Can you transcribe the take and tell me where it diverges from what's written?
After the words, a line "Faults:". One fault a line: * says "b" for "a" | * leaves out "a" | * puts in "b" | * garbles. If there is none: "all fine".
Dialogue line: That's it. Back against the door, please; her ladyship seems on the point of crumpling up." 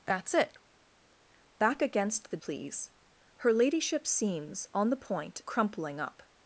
That's it. Back against the please; her ladyship seems on the point crumpling up."
Faults:
* leaves out "door"
* leaves out "of"